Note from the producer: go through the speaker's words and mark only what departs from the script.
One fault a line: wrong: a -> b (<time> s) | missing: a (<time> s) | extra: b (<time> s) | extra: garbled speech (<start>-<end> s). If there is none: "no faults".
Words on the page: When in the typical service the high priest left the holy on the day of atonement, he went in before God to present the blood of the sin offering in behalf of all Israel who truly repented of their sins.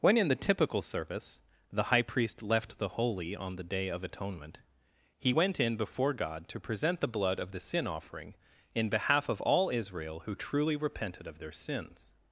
no faults